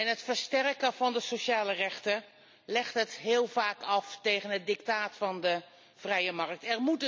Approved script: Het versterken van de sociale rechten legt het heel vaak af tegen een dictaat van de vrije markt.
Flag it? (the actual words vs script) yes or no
yes